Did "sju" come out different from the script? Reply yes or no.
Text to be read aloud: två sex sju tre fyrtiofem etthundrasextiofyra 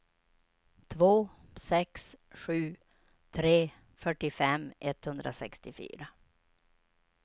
no